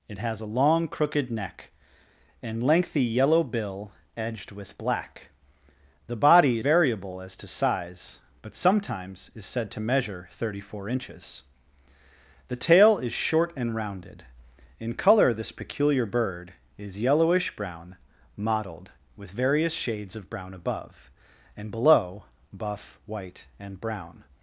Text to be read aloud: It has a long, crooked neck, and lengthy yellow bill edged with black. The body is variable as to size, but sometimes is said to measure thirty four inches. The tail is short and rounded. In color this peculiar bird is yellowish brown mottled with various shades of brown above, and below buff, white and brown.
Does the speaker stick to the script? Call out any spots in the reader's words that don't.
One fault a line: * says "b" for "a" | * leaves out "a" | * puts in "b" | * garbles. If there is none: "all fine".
* leaves out "is"